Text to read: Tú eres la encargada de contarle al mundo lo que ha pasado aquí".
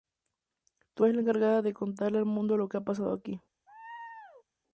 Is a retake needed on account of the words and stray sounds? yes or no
yes